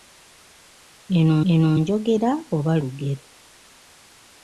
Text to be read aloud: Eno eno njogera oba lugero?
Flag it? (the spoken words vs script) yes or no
no